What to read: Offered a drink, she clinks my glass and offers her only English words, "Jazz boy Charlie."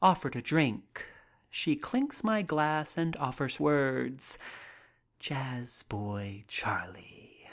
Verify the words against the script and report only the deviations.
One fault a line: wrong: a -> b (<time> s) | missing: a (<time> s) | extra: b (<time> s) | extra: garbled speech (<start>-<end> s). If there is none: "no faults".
missing: her only English (3.6 s)